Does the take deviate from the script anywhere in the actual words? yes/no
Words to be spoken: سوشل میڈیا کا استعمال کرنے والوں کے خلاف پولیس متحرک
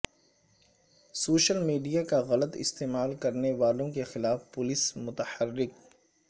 yes